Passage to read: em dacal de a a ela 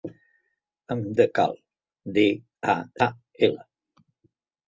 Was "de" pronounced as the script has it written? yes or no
yes